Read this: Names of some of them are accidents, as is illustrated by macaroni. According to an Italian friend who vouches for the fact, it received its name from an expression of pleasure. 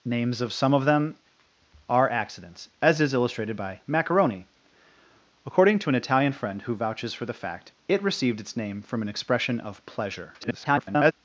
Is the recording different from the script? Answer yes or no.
yes